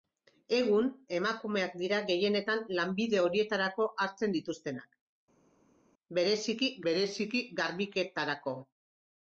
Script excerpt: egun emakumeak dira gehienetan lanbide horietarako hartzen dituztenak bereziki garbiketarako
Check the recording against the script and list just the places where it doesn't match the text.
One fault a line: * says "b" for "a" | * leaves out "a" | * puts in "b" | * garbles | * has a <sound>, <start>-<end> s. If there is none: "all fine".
* puts in "bereziki"